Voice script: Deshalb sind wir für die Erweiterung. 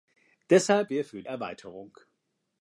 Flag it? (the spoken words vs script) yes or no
yes